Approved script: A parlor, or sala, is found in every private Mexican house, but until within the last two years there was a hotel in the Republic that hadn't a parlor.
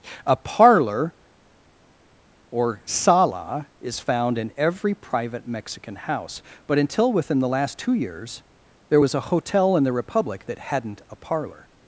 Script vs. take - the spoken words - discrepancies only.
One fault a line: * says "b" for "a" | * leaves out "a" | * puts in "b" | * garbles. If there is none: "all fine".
all fine